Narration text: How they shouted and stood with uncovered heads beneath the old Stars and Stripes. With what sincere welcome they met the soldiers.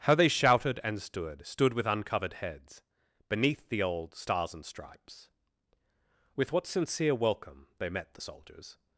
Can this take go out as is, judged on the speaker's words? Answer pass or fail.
fail